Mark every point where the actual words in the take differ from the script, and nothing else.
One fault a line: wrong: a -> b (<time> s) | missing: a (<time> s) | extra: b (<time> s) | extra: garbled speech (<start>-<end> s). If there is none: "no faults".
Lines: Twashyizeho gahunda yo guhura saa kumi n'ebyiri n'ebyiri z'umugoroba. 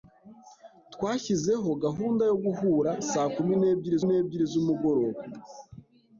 no faults